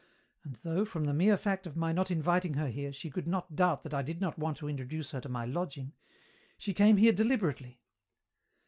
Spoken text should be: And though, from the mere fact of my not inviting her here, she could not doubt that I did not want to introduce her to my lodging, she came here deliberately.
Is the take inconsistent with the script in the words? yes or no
no